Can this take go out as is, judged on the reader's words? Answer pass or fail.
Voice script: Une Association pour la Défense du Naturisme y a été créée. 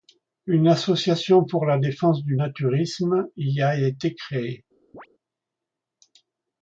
pass